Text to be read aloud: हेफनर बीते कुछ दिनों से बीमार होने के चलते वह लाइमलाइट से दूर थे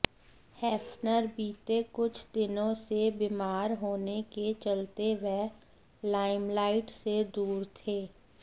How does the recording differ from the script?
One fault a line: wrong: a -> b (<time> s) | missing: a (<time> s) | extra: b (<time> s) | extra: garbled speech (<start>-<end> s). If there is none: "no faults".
no faults